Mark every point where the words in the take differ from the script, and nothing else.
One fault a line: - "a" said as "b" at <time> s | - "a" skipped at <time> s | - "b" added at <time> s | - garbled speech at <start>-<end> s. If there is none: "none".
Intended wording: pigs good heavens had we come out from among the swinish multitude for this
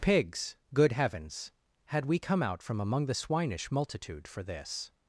none